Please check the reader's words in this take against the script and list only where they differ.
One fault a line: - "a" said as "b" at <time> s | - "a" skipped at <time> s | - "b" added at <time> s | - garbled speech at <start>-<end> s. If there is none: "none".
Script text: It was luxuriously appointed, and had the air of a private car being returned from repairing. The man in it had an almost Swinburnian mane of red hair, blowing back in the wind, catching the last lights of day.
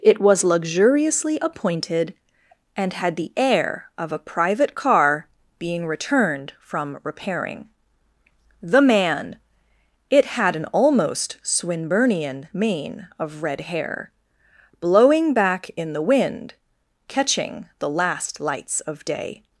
- "in" skipped at 9.4 s